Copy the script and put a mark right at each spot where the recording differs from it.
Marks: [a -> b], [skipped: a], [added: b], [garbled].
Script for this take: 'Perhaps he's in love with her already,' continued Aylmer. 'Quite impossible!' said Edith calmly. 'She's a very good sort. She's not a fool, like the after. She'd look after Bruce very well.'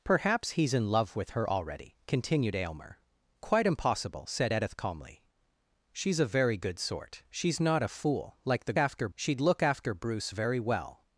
'Perhaps he's in love with her already,' continued Aylmer. 'Quite impossible!' said Edith calmly. 'She's a very good sort. She's not a fool, like the after. She'd look after Bruce very well.'